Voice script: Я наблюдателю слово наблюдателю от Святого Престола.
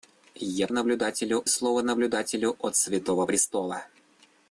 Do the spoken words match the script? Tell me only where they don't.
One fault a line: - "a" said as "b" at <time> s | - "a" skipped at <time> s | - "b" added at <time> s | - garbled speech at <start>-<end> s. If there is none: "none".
none